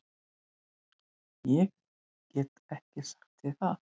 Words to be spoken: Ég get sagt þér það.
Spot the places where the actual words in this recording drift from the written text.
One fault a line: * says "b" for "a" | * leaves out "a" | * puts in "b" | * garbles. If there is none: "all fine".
* puts in "ekki"